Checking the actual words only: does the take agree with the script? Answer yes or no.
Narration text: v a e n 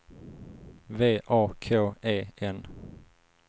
no